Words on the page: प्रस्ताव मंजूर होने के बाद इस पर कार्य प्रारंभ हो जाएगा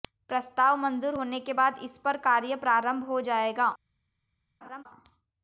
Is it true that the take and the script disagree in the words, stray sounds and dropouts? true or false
true